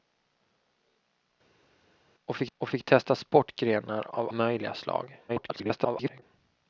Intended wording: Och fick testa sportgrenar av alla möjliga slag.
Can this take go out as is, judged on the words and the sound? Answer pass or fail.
fail